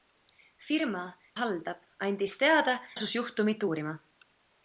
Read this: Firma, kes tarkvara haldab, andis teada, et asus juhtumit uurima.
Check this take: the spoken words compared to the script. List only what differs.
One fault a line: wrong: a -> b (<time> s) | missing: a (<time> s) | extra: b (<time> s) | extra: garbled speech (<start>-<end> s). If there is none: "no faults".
missing: kes tarkvara (1.0 s)
missing: et (2.8 s)